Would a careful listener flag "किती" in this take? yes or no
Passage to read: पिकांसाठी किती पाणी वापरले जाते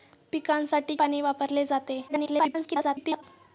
yes